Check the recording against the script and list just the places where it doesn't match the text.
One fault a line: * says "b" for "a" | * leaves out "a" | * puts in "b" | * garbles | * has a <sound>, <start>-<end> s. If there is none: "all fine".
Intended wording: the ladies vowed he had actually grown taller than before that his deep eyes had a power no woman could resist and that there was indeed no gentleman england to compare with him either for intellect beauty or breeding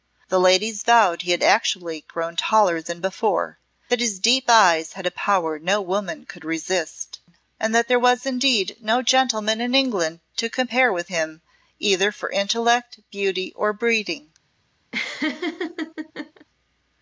* puts in "in"
* has a laugh, 14.9-16.5 s